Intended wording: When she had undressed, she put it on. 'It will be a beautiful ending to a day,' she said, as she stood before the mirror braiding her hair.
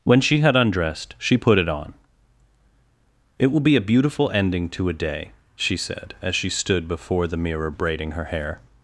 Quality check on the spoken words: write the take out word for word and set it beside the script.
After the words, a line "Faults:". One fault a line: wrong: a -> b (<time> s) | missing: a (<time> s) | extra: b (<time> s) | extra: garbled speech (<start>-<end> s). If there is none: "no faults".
When she had undressed, she put it on. 'It will be a beautiful ending to a day,' she said, as she stood before the mirror braiding her hair.
Faults:
no faults